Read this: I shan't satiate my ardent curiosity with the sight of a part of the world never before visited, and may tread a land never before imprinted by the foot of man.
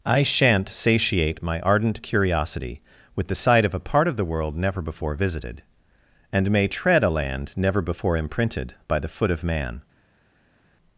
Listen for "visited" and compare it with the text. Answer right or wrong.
right